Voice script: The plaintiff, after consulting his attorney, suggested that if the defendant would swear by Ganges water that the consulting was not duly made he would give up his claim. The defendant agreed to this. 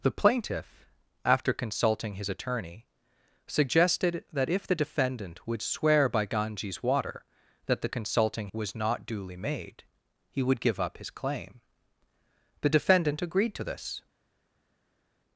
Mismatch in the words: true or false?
false